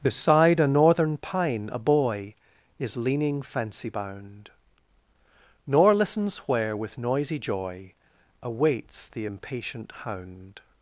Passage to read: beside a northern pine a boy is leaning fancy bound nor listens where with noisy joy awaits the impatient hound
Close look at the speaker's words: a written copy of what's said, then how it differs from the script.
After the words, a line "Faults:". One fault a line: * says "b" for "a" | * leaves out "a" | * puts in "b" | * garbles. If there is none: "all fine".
beside a northern pine a boy is leaning fancy bound nor listens where with noisy joy awaits the impatient hound
Faults:
all fine